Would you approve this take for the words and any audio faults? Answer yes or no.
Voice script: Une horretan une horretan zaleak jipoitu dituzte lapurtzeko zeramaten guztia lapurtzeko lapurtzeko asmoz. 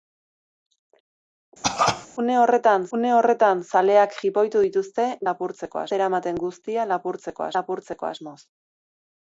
no